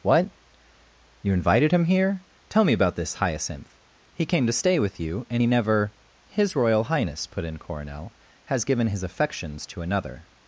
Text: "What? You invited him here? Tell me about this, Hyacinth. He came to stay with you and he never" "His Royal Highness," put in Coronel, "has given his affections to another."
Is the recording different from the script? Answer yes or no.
no